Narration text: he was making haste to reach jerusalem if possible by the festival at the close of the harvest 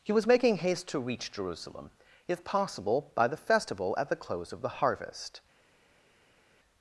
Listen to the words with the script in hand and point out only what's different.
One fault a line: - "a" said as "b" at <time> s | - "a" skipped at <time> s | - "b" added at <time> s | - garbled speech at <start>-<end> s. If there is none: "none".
none